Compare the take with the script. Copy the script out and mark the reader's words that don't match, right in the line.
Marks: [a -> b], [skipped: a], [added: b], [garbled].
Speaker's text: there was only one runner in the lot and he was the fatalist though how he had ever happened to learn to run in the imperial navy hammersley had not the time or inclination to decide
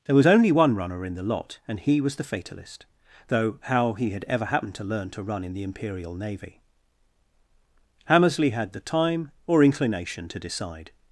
there was only one runner in the lot and he was the fatalist though how he had ever happened to learn to run in the imperial navy hammersley had [skipped: not] the time or inclination to decide